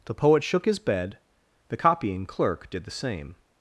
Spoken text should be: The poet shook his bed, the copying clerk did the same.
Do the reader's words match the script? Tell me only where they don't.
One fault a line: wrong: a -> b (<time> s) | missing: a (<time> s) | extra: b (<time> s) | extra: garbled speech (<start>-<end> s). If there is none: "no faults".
no faults